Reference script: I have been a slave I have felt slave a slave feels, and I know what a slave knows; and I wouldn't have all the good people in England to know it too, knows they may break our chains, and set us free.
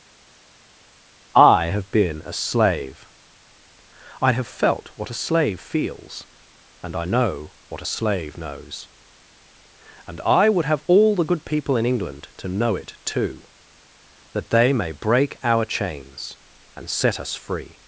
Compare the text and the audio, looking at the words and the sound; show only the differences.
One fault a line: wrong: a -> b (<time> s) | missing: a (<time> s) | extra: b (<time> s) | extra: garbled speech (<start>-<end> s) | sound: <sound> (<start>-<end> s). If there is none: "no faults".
wrong: slave -> what (4.9 s)
wrong: wouldn't -> would (10.5 s)
wrong: knows -> that (14.3 s)